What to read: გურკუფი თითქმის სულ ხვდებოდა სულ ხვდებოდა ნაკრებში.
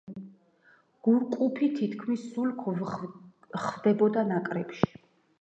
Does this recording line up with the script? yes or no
no